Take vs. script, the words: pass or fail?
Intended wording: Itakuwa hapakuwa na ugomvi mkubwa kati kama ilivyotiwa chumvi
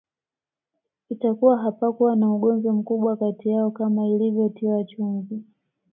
fail